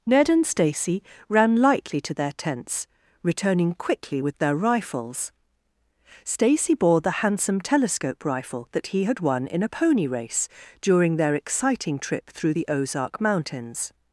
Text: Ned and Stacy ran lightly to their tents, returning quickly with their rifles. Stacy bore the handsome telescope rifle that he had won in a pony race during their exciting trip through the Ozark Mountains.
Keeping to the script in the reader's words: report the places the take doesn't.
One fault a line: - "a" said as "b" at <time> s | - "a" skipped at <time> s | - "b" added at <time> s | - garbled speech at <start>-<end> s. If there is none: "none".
none